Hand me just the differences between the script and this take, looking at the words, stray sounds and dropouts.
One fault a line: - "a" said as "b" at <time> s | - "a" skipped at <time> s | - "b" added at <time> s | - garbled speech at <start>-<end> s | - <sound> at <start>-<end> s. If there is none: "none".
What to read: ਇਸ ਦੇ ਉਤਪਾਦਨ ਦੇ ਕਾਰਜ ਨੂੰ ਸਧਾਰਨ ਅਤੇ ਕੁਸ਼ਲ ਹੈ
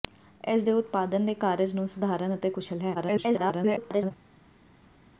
- garbled speech at 2.9-4.1 s